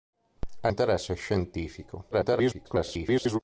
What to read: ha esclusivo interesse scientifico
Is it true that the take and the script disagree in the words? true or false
true